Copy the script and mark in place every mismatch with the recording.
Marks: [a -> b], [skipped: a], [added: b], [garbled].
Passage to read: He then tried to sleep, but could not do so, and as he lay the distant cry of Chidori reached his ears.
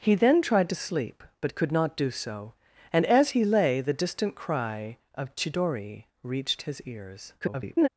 He then tried to sleep, but could not do so, and as he lay the distant cry of Chidori reached his ears. [garbled]